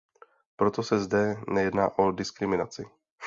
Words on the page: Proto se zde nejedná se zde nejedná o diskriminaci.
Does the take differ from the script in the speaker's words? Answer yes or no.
yes